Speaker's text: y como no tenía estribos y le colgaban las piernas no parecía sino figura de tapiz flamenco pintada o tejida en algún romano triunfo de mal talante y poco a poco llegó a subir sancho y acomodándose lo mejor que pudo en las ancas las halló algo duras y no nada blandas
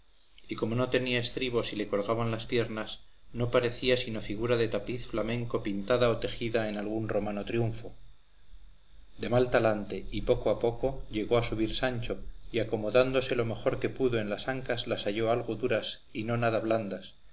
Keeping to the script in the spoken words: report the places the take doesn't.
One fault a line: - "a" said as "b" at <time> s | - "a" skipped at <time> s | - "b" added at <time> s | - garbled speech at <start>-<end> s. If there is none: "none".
none